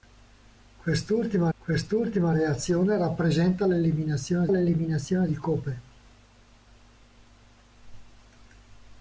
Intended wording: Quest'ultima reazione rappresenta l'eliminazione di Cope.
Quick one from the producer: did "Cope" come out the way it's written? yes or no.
yes